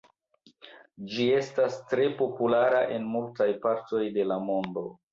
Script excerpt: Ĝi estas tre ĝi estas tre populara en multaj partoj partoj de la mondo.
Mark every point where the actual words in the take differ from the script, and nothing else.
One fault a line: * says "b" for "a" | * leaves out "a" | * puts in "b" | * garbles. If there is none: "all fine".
* leaves out "ĝi estas tre"
* leaves out "partoj"